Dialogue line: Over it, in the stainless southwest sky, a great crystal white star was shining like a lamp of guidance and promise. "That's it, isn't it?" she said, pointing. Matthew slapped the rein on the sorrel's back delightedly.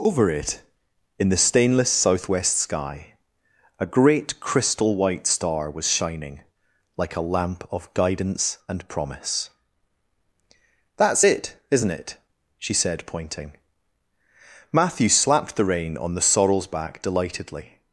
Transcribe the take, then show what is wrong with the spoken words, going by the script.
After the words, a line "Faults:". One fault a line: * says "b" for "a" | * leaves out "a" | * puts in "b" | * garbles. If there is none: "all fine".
Over it, in the stainless southwest sky, a great crystal white star was shining like a lamp of guidance and promise. "That's it, isn't it?" she said, pointing. Matthew slapped the rein on the sorrel's back delightedly.
Faults:
all fine